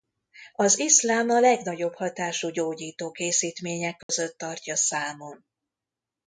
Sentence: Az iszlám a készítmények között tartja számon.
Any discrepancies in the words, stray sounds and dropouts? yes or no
yes